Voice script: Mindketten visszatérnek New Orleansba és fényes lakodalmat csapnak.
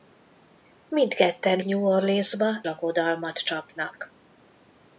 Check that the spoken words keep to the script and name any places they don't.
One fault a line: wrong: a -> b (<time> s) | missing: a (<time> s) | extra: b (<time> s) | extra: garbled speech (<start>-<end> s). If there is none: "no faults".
missing: visszatérnek (1.6 s)
missing: és fényes (2.6 s)